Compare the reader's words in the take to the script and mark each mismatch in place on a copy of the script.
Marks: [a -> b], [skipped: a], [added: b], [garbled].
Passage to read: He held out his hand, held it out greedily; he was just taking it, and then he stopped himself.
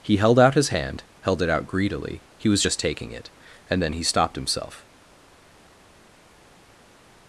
He held out his hand, held it out greedily; he was just taking it, and then he stopped himself.